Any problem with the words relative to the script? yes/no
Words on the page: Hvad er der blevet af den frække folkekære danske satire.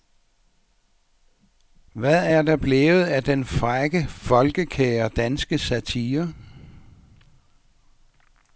no